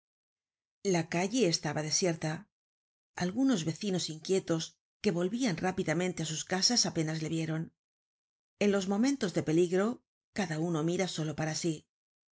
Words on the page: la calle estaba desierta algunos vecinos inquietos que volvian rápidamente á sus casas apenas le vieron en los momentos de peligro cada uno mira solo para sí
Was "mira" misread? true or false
false